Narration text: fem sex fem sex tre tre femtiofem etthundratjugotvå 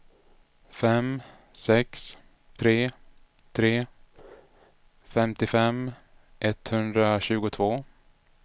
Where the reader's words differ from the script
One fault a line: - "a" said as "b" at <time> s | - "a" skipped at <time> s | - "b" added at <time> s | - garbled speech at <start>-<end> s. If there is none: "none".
- "fem sex" skipped at 2.0 s